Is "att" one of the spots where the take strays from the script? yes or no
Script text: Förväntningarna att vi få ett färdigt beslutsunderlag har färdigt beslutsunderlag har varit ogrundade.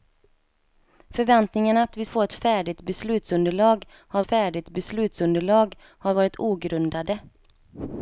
no